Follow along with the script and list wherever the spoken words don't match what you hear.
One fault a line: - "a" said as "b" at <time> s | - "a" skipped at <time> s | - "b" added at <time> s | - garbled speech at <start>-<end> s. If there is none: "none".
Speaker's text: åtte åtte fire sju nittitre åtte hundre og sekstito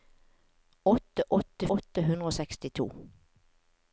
- "fire sju nittitre" skipped at 1.7 s